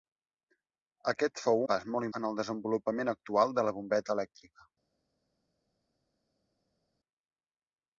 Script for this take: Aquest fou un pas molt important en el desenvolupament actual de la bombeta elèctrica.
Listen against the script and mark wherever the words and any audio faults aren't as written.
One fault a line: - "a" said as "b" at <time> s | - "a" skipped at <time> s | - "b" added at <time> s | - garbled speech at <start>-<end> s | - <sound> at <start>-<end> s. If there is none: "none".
- "un" skipped at 1.6 s
- "important" skipped at 2.1 s